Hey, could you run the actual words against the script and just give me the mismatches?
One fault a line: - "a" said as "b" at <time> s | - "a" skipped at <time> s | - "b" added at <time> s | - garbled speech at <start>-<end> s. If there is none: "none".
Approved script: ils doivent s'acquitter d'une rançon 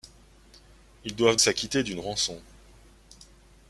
none